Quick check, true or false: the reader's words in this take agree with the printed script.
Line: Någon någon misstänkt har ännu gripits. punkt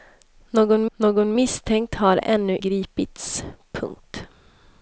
true